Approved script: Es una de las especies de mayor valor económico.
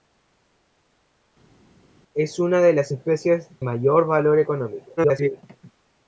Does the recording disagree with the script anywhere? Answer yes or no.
yes